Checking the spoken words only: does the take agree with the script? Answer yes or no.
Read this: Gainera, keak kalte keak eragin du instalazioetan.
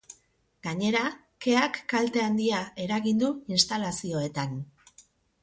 no